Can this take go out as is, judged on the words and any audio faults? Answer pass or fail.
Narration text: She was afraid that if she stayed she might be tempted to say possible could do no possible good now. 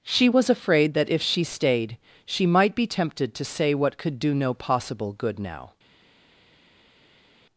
fail